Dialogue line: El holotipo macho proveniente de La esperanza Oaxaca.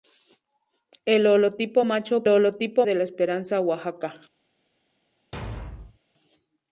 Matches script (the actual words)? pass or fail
fail